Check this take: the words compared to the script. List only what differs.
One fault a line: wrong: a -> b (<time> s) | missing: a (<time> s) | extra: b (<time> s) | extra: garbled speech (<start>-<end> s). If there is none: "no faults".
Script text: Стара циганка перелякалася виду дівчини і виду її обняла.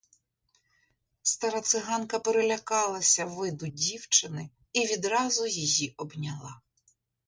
wrong: виду -> відразу (4.9 s)